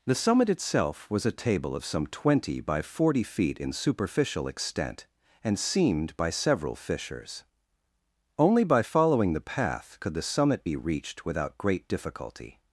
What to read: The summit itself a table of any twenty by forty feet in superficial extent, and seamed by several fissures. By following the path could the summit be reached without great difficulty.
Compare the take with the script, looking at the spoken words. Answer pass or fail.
fail